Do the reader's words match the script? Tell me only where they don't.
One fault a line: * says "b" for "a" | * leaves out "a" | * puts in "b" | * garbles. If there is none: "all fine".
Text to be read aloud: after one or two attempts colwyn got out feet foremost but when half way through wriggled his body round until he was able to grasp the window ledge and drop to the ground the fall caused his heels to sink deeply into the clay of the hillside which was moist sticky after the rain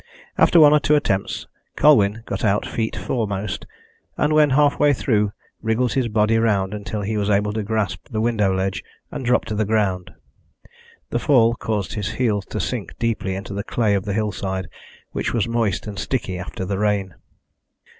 * says "and" for "but"
* puts in "and"